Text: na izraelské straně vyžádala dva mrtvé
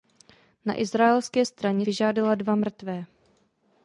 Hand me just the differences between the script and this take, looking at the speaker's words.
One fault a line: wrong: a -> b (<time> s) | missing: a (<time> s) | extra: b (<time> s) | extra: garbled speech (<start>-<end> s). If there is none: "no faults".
no faults